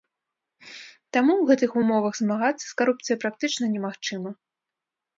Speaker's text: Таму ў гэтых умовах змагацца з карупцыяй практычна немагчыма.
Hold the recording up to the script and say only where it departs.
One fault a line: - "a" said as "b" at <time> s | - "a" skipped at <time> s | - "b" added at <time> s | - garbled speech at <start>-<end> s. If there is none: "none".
none